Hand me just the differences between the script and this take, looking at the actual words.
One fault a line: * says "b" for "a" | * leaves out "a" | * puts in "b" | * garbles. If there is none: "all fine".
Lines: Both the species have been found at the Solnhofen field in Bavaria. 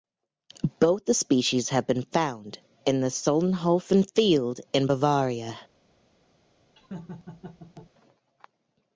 * says "in" for "at"